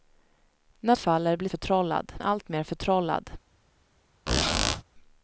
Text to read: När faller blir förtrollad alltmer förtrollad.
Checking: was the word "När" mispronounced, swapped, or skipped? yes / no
no